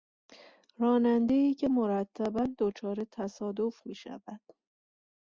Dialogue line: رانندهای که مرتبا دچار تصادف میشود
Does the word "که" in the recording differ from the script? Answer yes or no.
no